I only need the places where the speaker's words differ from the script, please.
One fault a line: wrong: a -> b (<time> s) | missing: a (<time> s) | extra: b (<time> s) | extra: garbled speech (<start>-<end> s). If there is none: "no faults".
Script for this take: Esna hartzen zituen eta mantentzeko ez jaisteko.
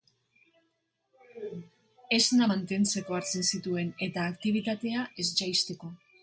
extra: mantentzeko (2.5 s)
wrong: mantentzeko -> aktibitatea (4.3 s)